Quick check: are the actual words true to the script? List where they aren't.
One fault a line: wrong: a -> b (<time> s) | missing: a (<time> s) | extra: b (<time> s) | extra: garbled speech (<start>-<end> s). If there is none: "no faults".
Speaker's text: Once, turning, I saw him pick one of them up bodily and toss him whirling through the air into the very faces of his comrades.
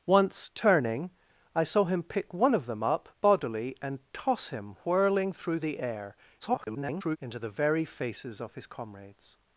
extra: garbled speech (6.4-7.2 s)